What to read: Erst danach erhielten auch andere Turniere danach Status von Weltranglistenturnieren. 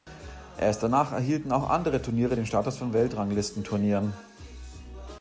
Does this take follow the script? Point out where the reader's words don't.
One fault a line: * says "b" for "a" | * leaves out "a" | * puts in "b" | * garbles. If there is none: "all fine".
* says "den" for "danach"